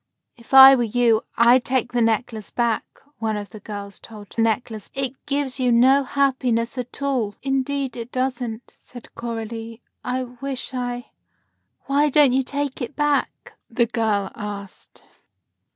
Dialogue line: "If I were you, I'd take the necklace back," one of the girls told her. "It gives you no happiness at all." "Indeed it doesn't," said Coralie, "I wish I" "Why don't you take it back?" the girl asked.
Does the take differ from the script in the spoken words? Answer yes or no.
yes